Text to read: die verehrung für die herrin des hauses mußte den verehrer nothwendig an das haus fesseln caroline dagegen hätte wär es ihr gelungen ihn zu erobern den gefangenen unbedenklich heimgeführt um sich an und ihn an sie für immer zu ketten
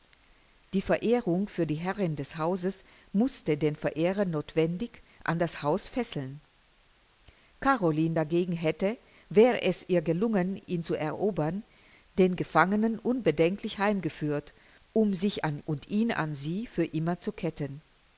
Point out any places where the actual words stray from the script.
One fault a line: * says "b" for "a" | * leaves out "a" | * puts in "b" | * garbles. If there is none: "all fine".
all fine